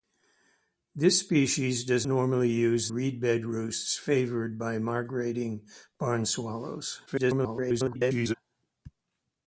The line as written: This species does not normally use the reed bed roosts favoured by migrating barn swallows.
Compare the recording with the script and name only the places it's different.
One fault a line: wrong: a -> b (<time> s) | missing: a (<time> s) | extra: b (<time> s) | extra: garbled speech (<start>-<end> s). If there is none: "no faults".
missing: not (2.1 s)
missing: the (2.9 s)
extra: garbled speech (7.1-8.3 s)